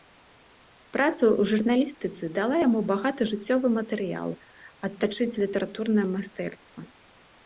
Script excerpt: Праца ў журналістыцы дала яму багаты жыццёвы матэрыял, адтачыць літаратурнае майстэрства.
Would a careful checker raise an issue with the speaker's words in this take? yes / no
no